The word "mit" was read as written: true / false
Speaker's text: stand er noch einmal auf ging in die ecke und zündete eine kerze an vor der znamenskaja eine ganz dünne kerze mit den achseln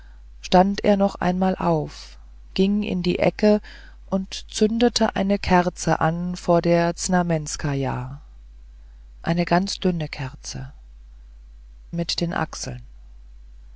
true